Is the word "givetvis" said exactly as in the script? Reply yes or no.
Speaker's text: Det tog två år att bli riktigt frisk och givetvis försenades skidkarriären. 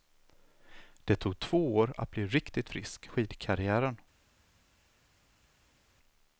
no